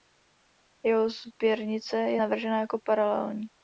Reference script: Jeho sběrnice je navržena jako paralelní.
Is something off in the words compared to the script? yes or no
no